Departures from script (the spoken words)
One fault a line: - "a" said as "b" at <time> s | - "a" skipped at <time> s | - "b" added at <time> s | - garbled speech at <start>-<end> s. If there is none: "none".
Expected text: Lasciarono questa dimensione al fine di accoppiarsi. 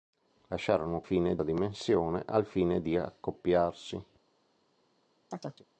- "questa" said as "fine" at 1.0 s